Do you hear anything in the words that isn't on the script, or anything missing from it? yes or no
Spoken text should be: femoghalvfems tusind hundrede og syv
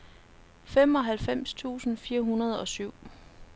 yes